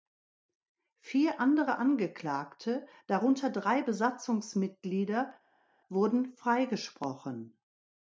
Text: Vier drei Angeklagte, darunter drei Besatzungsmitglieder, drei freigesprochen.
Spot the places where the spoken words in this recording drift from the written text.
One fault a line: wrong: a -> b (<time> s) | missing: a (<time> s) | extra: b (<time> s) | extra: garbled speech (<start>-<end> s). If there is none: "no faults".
wrong: drei -> andere (1.4 s)
wrong: drei -> wurden (5.9 s)